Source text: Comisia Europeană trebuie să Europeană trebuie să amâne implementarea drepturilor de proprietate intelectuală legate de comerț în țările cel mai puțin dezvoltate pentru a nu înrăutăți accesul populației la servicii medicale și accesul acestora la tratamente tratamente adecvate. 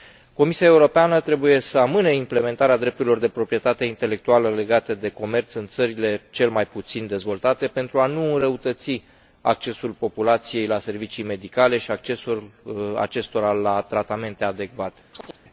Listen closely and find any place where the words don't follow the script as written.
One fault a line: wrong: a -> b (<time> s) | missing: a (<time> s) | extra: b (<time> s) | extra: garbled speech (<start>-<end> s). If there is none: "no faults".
missing: Europeană trebuie să (1.8 s)
missing: tratamente (14.4 s)